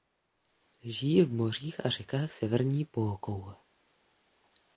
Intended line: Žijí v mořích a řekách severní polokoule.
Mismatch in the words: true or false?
false